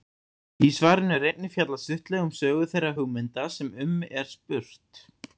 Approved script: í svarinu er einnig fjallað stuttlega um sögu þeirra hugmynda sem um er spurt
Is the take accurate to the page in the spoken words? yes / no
yes